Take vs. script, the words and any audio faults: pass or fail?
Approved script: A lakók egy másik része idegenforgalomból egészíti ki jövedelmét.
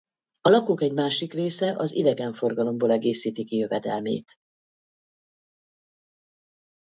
fail